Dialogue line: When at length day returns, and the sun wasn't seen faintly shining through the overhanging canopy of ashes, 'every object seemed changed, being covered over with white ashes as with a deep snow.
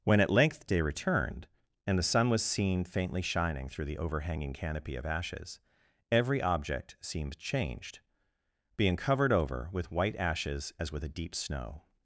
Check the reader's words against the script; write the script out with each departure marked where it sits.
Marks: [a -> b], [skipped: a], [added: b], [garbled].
When at length day [returns, -> returned] and the sun [wasn't -> was] seen faintly shining through the overhanging canopy of ashes, 'every object seemed changed, being covered over with white ashes as with a deep snow.